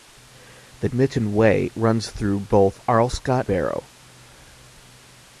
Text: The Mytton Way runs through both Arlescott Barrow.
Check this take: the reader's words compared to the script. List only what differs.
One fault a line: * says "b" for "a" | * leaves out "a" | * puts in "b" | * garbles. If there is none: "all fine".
all fine